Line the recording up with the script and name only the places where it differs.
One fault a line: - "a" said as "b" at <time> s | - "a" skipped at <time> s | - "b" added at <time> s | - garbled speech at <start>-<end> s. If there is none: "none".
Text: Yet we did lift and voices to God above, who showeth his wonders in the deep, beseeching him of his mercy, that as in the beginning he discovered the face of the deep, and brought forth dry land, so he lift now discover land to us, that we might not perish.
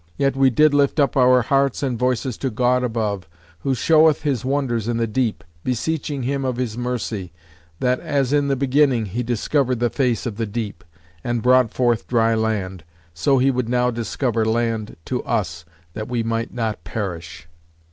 - "up our hearts" added at 1.0 s
- "lift" said as "would" at 13.5 s